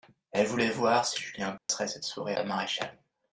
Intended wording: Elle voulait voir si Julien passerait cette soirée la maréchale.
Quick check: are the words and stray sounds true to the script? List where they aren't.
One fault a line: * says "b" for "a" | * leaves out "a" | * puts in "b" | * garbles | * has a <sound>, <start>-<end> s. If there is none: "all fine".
* has a dropout, 1.6-1.7 s